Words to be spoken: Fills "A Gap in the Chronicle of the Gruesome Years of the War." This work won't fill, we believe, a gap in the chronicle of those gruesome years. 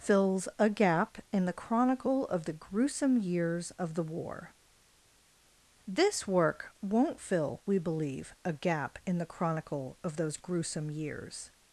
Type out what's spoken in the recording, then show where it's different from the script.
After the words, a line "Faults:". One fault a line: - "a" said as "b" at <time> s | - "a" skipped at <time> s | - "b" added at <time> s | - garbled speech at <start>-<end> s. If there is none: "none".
Fills "A Gap in the Chronicle of the Gruesome Years of the War." This work won't fill, we believe, a gap in the chronicle of those gruesome years.
Faults:
none